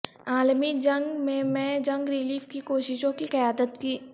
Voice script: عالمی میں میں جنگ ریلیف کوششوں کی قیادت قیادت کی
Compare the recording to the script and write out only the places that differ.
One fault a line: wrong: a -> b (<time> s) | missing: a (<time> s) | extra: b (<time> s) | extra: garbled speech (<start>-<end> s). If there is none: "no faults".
extra: جنگ (0.8 s)
extra: کی (2.5 s)
missing: قیادت (3.8 s)